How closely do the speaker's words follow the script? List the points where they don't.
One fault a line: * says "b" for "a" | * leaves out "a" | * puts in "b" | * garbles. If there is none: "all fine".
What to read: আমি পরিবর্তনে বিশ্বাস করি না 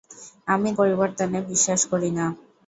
all fine